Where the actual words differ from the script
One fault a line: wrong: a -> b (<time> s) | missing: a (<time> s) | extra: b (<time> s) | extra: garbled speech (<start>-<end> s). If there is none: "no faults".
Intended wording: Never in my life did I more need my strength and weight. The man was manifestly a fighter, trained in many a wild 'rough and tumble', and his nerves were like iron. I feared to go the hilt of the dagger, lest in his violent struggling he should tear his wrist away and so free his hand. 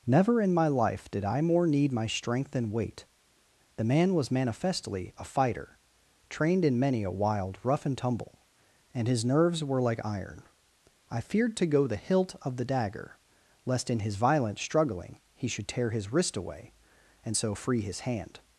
no faults